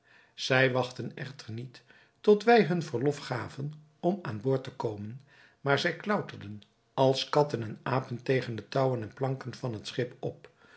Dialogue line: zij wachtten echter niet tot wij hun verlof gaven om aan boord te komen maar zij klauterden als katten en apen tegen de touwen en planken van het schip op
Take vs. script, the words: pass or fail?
pass